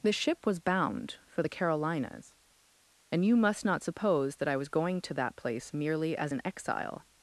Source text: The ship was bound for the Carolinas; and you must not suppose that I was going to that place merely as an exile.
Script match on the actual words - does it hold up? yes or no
yes